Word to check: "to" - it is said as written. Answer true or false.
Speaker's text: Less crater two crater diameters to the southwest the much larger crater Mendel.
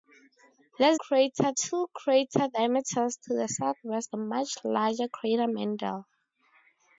true